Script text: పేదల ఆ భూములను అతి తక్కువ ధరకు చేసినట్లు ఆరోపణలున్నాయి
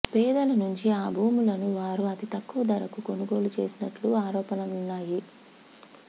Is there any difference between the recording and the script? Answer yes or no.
yes